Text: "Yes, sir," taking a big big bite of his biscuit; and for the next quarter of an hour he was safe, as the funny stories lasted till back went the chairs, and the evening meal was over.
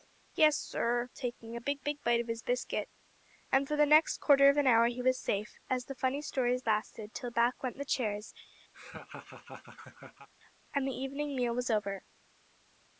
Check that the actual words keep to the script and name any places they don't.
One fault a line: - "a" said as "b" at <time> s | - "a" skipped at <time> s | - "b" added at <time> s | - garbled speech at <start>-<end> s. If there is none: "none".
none